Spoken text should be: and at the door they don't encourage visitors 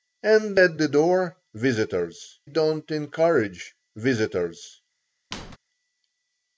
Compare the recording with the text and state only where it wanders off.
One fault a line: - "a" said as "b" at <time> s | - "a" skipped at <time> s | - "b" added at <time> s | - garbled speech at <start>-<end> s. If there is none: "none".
- "they" said as "visitors" at 1.5 s